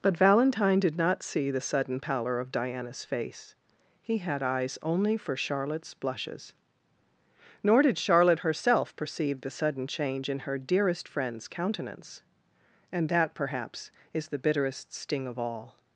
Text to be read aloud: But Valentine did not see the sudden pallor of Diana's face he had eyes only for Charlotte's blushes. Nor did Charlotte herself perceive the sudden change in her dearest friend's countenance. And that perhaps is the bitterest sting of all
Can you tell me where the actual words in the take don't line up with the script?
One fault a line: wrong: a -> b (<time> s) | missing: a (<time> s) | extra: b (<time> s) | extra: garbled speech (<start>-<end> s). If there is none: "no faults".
no faults